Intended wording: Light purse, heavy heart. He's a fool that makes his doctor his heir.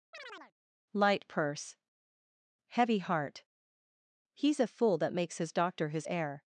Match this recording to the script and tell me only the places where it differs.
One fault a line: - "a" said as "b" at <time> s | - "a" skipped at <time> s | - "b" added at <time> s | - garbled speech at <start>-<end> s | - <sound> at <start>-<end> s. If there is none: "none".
- chirp at 0.1-0.5 s